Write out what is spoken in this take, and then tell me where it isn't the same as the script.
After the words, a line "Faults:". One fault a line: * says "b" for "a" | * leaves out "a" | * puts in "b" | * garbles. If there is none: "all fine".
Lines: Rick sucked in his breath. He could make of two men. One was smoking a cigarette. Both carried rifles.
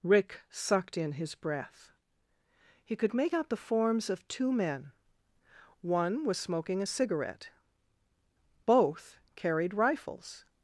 Rick sucked in his breath. He could make out the forms of two men. One was smoking a cigarette. Both carried rifles.
Faults:
* puts in "out the forms"